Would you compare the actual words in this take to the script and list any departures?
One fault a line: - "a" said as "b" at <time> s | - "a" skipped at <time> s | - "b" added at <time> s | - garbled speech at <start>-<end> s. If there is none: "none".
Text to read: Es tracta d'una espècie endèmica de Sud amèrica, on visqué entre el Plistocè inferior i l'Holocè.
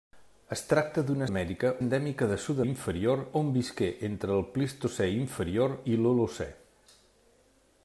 - "espècie" said as "amèrica" at 1.3 s
- "amèrica" said as "inferior" at 2.7 s